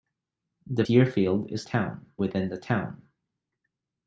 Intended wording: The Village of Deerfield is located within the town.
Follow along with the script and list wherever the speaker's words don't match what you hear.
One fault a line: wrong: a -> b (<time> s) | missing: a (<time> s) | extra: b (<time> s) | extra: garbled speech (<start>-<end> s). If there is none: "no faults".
missing: Village of (0.8 s)
wrong: located -> town (1.6 s)